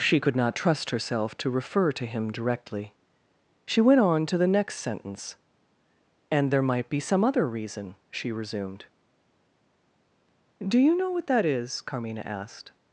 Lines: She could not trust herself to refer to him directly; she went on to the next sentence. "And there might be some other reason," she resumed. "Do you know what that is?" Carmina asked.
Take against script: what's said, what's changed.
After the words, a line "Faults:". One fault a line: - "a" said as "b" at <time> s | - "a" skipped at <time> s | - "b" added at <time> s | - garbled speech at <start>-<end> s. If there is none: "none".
She could not trust herself to refer to him directly; she went on to the next sentence. "And there might be some other reason," she resumed. "Do you know what that is?" Carmina asked.
Faults:
none